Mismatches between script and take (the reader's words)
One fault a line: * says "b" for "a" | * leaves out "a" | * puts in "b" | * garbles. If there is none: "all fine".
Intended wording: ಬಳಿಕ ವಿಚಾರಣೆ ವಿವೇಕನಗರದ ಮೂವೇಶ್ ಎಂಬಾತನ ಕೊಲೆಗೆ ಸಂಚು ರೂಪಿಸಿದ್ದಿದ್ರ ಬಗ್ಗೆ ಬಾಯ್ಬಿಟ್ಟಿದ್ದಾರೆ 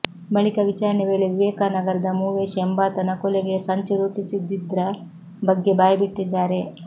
* puts in "ವೇಳೆ"